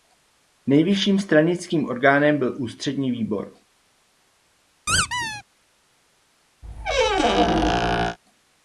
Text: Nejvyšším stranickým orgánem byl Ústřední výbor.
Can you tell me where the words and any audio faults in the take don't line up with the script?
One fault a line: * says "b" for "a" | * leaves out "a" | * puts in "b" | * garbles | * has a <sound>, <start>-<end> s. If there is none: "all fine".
* has a squeak, 4.9-5.4 s
* has a squeak, 6.6-8.2 s